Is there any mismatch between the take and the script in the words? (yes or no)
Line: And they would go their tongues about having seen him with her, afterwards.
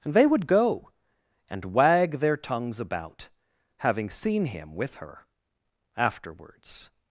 yes